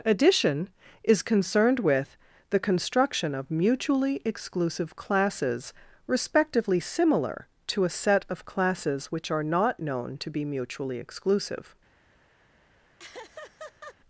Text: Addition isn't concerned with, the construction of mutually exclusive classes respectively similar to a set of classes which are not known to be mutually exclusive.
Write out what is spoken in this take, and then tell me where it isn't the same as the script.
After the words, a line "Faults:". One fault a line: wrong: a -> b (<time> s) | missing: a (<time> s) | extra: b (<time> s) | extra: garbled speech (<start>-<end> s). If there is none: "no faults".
Addition is concerned with, the construction of mutually exclusive classes respectively similar to a set of classes which are not known to be mutually exclusive.
Faults:
wrong: isn't -> is (1.0 s)